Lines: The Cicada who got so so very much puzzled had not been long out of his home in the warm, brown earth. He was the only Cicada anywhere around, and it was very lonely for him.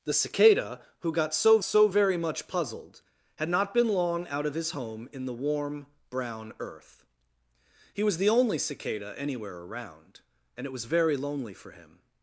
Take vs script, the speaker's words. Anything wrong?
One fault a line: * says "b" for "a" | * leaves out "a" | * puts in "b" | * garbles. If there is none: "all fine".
all fine